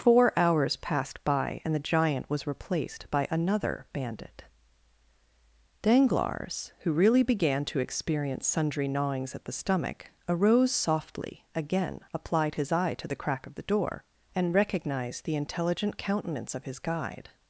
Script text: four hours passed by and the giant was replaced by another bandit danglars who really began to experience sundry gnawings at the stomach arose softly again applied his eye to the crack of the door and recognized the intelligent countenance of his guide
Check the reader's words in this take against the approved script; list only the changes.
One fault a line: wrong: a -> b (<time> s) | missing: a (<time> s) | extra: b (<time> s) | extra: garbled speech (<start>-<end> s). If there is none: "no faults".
no faults